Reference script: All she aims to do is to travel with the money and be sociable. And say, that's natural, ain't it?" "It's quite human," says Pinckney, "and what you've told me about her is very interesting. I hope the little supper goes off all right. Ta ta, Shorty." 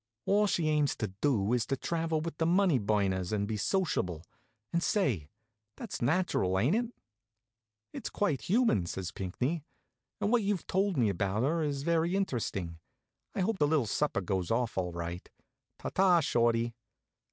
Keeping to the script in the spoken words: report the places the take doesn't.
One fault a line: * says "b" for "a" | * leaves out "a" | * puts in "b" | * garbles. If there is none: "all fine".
* puts in "burners"